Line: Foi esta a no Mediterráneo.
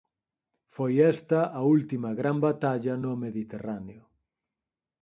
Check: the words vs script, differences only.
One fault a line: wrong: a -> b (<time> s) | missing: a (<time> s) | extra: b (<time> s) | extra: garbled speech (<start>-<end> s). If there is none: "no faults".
extra: última gran batalla (1.8 s)